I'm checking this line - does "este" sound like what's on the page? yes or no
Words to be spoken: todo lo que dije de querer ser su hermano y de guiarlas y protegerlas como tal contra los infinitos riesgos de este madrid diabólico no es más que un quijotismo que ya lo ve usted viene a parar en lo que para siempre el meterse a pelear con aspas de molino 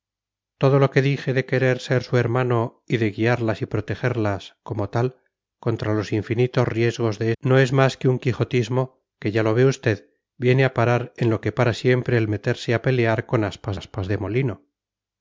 no